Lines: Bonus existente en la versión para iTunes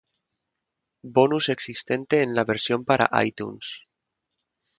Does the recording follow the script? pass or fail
pass